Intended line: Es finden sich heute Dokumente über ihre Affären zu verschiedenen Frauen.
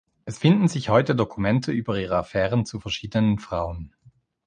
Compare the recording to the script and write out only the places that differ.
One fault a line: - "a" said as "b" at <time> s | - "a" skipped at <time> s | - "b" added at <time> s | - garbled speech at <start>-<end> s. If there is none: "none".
none